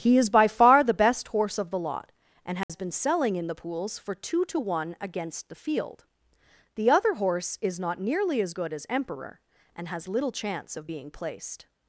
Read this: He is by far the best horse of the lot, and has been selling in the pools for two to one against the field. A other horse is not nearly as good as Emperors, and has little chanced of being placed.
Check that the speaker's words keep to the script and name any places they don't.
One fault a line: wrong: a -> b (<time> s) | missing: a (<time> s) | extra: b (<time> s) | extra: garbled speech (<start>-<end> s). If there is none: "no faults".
wrong: A -> The (6.8 s)
wrong: Emperors -> Emperor (8.9 s)
wrong: chanced -> chance (10.3 s)